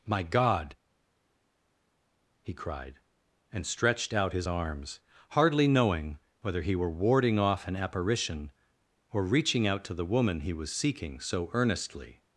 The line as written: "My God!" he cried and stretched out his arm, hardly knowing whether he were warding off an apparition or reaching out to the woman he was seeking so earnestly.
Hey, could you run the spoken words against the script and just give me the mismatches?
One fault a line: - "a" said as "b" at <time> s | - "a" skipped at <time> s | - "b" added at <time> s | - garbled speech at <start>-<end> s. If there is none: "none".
- "arm" said as "arms" at 4.5 s